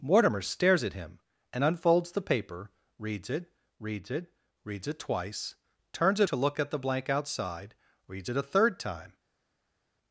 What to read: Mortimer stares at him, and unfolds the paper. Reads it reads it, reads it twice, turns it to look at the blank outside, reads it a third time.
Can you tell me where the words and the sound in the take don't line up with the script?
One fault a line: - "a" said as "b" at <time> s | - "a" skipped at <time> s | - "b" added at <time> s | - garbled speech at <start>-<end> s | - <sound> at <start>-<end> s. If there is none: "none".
none